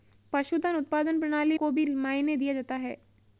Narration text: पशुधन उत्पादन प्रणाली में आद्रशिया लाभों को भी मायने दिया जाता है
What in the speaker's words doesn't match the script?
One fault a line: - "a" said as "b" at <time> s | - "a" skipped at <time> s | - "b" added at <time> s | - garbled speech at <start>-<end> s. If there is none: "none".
- "में आद्रशिया लाभों" skipped at 1.6 s